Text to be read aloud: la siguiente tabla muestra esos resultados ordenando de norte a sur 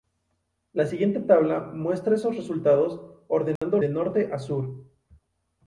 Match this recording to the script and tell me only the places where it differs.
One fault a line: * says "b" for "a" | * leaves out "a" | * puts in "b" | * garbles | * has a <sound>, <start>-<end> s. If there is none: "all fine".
* has a dropout, 3.6-3.6 s